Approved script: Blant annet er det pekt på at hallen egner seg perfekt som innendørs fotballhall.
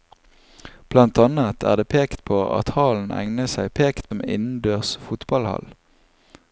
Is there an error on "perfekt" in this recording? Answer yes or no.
yes